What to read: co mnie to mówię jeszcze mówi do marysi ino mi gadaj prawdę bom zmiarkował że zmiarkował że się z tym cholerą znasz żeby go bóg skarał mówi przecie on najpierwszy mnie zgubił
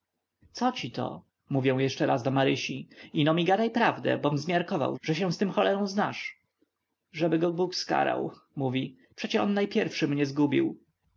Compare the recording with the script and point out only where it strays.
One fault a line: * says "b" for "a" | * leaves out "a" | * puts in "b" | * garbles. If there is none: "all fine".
* says "ci" for "mnie"
* says "raz" for "mówi"
* leaves out "zmiarkował że"